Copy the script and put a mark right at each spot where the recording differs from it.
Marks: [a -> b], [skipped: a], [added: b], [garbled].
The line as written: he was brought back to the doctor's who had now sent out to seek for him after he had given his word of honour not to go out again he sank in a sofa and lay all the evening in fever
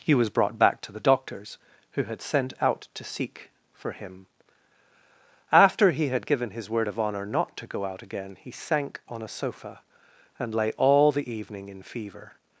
he was brought back to the doctor's who had [skipped: now] sent out to seek for him after he had given his word of honour not to go out again he sank [in -> on] a sofa and lay all the evening in fever